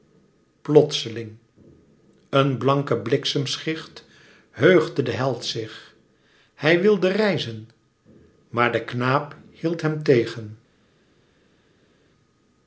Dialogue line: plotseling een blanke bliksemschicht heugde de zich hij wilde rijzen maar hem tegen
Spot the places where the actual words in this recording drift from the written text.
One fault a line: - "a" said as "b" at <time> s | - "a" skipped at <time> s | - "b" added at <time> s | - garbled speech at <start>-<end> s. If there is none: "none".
- "held" added at 5.1 s
- "de knaap hield" added at 8.7 s